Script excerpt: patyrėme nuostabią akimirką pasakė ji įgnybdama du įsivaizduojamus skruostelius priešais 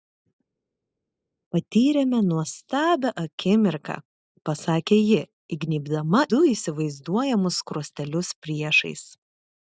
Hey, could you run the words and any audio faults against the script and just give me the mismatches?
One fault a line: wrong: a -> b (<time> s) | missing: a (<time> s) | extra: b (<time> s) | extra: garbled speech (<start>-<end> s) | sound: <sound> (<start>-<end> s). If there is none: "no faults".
no faults